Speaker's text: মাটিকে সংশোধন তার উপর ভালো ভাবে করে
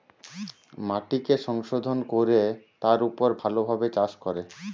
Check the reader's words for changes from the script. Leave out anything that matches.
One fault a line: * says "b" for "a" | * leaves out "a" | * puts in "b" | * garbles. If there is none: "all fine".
* puts in "কোরে"
* puts in "চাষ"